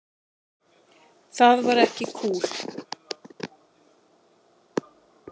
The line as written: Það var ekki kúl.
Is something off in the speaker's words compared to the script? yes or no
no